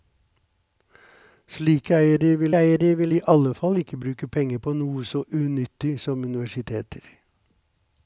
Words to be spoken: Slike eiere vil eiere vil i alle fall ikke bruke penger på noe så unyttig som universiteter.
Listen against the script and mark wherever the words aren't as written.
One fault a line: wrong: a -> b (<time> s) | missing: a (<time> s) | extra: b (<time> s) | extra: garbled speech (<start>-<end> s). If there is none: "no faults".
no faults